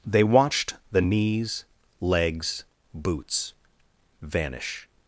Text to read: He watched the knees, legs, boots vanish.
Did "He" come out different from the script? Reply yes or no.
yes